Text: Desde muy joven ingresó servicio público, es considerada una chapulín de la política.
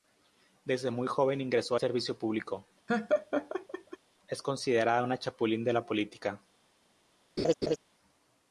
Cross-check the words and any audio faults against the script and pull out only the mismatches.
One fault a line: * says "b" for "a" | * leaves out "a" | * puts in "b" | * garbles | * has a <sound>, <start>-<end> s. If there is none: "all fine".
* has a laugh, 2.9-4.0 s
* has a laugh, 7.4-7.8 s